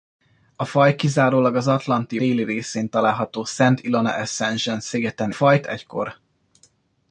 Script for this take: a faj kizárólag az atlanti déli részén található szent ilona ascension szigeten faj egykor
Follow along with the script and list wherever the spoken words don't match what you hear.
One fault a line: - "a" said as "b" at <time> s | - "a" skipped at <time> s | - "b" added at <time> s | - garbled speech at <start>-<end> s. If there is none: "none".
none